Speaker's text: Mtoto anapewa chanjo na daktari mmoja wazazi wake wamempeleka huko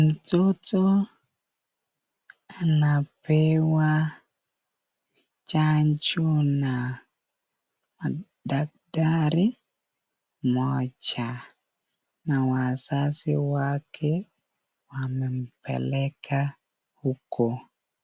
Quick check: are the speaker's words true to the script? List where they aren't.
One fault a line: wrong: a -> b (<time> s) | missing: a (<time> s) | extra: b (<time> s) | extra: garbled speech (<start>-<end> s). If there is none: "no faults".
extra: na (12.2 s)